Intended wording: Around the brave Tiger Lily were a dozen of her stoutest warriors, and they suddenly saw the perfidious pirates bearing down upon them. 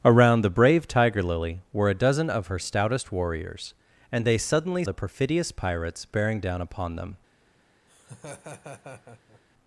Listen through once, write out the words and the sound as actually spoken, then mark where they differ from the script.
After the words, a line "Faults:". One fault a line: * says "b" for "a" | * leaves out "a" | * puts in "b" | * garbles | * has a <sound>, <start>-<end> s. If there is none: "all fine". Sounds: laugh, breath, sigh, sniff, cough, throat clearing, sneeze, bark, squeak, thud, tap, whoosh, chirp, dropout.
Around the brave Tiger Lily were a dozen of her stoutest warriors, and they suddenly the perfidious pirates bearing down upon them.
Faults:
* leaves out "saw"
* has a laugh, 7.9-9.4 s